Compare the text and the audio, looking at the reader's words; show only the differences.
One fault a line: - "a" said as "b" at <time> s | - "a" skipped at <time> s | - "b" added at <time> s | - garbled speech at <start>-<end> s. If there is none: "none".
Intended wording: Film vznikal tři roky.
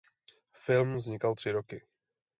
none